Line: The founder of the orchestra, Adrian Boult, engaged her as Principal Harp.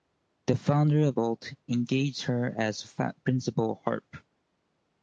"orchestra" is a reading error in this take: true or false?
true